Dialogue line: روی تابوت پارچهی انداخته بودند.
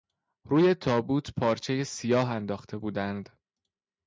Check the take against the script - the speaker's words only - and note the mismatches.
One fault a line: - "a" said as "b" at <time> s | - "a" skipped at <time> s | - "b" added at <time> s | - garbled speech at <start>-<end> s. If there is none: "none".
- "سیاه" added at 1.8 s